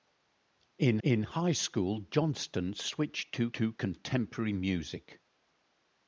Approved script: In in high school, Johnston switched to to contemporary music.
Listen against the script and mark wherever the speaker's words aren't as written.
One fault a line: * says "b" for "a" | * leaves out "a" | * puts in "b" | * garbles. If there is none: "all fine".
all fine